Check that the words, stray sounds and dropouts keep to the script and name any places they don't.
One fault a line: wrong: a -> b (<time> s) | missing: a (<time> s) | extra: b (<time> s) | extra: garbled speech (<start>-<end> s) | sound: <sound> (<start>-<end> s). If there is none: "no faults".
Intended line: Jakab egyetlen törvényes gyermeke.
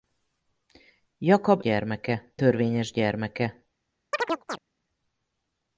wrong: egyetlen -> gyermeke (1.6 s)
sound: chirp (4.1-4.6 s)